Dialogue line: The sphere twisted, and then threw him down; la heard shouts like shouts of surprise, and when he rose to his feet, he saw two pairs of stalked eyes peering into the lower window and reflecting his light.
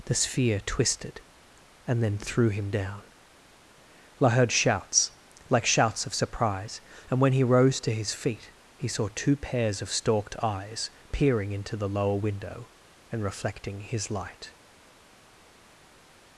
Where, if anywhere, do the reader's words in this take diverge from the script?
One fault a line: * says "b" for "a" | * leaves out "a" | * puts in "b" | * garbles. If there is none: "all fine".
all fine